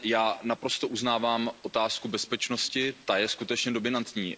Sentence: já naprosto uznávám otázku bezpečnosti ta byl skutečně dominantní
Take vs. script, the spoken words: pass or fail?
fail